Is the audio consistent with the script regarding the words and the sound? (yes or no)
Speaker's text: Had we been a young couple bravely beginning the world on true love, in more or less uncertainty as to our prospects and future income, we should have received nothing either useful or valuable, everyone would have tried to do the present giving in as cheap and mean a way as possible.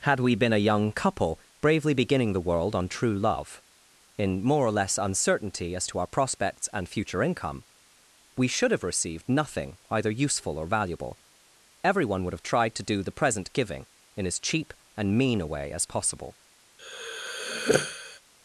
no